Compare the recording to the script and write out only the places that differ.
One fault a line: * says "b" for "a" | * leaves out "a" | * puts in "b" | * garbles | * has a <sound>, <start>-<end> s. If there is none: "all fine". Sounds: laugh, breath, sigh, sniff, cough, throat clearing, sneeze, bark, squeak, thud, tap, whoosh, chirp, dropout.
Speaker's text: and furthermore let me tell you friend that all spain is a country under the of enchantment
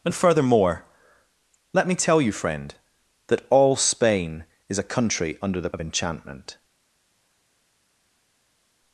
all fine